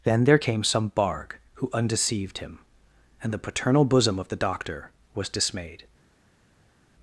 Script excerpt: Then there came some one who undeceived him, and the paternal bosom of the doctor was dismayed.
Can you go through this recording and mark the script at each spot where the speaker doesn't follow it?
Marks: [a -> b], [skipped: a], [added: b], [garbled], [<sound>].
Then there came some [one -> barg] who undeceived him, and the paternal bosom of the doctor was dismayed.